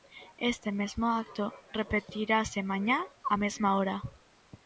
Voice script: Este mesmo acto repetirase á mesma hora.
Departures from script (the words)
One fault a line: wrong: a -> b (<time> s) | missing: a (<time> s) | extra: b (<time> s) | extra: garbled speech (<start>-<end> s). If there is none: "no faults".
extra: mañá (2.7 s)